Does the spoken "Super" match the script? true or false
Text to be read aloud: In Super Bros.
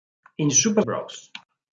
true